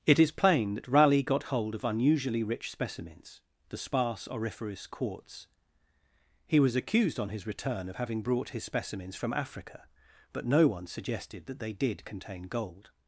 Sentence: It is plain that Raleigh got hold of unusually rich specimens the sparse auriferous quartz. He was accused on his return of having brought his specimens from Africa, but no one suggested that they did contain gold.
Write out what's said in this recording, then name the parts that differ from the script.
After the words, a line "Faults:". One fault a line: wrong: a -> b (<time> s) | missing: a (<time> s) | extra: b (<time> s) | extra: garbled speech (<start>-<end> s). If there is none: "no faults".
It is plain that Raleigh got hold of unusually rich specimens the sparse auriferous quartz. He was accused on his return of having brought his specimens from Africa, but no one suggested that they did contain gold.
Faults:
no faults